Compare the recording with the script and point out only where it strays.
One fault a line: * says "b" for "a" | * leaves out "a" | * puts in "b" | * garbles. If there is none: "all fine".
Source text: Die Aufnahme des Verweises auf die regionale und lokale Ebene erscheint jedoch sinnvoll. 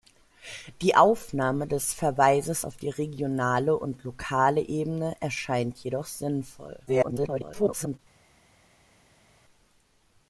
* garbles